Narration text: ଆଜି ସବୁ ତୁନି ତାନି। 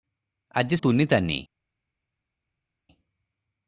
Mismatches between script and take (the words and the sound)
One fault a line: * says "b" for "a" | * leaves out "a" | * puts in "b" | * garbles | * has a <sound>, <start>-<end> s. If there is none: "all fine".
* leaves out "ସବୁ"